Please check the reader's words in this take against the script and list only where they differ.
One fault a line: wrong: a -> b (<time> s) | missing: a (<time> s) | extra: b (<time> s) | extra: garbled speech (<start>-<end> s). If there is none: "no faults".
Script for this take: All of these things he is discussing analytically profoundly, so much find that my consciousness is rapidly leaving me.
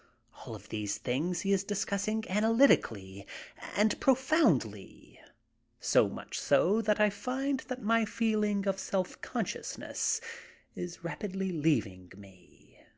extra: and (3.8 s)
extra: so that I (6.4 s)
extra: feeling of self (8.1 s)